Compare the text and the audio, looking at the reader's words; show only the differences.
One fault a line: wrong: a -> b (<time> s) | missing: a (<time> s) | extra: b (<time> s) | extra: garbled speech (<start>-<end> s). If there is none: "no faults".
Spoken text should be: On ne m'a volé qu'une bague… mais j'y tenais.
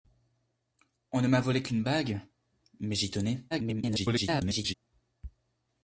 extra: garbled speech (3.5-4.7 s)